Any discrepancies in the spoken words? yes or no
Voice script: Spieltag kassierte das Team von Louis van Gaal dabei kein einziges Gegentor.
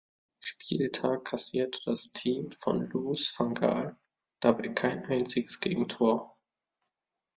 no